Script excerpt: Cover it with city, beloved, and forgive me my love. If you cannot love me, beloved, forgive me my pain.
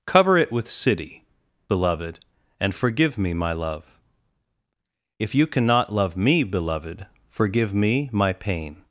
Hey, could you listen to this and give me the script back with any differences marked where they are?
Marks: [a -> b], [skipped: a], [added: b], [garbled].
Cover it with city, beloved, and forgive me my love. If you cannot love me, beloved, forgive me my pain.